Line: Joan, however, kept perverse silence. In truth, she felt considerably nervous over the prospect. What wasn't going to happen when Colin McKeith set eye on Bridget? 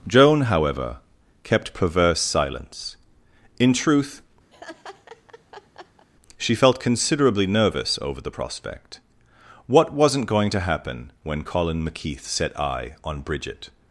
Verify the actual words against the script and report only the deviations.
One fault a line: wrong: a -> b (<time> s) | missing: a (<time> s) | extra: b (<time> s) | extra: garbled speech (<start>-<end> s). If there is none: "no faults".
no faults